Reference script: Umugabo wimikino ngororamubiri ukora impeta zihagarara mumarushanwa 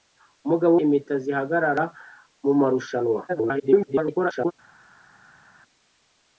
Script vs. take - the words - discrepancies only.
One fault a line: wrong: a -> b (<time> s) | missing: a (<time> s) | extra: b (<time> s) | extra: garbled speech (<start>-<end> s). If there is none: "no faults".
missing: wimikino ngororamubiri ukora (0.7 s)
extra: garbled speech (3.3-4.5 s)